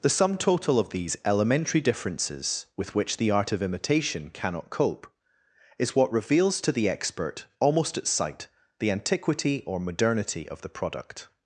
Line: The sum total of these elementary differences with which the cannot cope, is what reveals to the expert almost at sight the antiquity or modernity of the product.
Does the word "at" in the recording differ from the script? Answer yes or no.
no